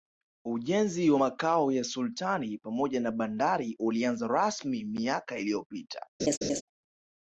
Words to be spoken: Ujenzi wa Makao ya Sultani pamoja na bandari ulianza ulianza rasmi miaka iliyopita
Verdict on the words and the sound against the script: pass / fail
fail